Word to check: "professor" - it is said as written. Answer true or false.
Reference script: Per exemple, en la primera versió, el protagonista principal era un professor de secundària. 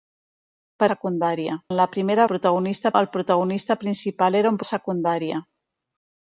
false